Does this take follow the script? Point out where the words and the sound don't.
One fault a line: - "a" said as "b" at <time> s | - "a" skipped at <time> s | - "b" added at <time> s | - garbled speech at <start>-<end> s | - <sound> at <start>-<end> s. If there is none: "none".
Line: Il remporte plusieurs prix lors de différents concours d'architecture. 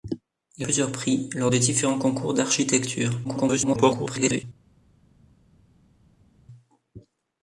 - "remporte" skipped at 0.7 s
- garbled speech at 3.2-4.4 s